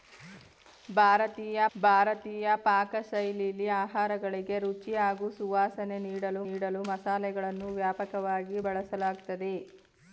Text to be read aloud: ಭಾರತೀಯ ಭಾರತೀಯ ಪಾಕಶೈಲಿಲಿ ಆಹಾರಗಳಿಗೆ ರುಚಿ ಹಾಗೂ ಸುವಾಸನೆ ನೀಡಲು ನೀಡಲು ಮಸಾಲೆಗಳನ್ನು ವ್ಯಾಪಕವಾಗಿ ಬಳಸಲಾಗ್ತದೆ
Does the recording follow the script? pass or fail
pass